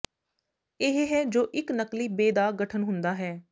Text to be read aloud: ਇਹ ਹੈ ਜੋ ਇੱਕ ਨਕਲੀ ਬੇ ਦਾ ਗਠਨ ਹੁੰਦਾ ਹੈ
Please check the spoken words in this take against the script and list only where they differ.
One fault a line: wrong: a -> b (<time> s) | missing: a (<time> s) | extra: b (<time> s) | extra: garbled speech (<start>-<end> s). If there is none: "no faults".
no faults